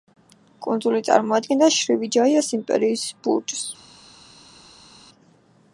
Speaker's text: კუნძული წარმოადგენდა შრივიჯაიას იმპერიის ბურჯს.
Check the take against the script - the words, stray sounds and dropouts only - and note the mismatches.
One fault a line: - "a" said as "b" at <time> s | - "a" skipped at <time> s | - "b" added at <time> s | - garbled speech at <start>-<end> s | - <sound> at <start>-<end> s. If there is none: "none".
none